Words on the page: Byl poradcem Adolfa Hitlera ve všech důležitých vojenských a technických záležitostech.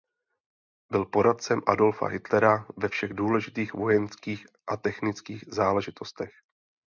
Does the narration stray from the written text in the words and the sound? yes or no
no